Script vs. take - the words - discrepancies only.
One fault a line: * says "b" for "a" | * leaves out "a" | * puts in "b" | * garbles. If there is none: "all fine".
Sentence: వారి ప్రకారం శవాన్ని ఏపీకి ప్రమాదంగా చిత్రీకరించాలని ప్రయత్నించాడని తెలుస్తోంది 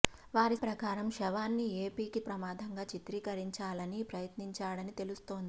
all fine